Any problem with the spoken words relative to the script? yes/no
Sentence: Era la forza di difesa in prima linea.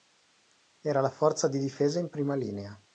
no